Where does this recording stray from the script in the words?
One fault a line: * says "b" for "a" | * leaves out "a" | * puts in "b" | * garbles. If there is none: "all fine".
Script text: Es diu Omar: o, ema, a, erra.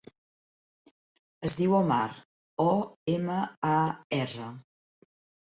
all fine